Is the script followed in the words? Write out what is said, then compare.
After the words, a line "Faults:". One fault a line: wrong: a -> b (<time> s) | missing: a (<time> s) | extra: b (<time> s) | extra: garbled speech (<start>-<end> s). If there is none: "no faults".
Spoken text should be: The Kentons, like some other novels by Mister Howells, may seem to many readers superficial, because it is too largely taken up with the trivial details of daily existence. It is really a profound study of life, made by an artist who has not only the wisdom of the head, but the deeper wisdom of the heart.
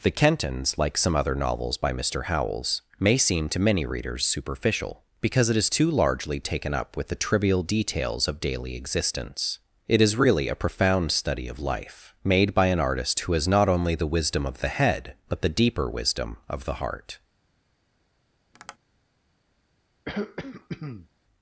The Kentons, like some other novels by Mister Howells, may seem to many readers superficial, because it is too largely taken up with the trivial details of daily existence. It is really a profound study of life, made by an artist who has not only the wisdom of the head, but the deeper wisdom of the heart.
Faults:
no faults